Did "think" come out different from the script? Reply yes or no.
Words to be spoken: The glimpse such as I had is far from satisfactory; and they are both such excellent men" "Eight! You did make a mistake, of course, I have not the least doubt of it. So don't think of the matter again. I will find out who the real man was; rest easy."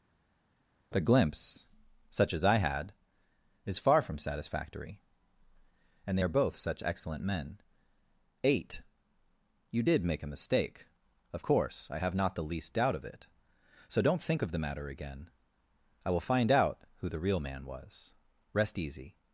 no